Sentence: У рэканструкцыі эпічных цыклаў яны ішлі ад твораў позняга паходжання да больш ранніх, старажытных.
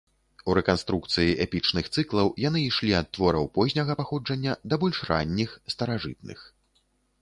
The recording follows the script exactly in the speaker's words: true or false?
true